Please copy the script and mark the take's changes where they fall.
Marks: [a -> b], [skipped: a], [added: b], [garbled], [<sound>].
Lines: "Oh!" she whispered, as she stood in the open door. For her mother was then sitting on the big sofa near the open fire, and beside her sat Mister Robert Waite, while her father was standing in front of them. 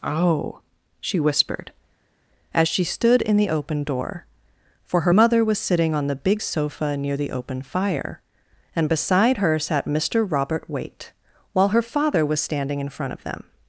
"Oh!" she whispered, as she stood in the open door. For her mother was [skipped: then] sitting on the big sofa near the open fire, and beside her sat Mister Robert Waite, while her father was standing in front of them.